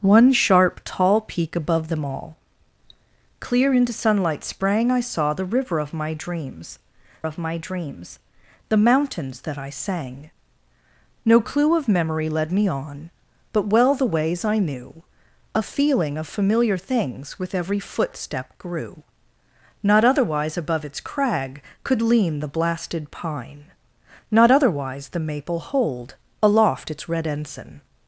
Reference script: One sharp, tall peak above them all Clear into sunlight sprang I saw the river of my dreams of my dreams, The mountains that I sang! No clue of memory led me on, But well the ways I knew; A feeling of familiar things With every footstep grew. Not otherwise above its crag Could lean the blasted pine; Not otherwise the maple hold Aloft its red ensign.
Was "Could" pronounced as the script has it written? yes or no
yes